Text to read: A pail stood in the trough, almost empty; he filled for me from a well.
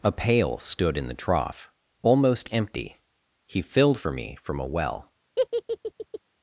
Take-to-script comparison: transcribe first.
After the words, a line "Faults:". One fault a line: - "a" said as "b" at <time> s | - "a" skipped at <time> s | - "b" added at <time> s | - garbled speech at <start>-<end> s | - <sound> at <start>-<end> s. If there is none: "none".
A pail stood in the trough, almost empty; he filled for me from a well.
Faults:
- laugh at 5.4-6.2 s